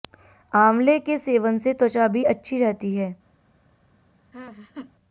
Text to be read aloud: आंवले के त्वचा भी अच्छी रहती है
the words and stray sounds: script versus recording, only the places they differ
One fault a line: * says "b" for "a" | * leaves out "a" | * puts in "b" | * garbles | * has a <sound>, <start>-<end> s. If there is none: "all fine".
* puts in "सेवन से"
* has a laugh, 4.3-4.9 s